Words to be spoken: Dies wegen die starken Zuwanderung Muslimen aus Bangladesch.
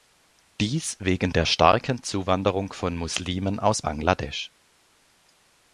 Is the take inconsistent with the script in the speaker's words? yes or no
yes